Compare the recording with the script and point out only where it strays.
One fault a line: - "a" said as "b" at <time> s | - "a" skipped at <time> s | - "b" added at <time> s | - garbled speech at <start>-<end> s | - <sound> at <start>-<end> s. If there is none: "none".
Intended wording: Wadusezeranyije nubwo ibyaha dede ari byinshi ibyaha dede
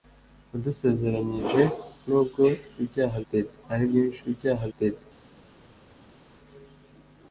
none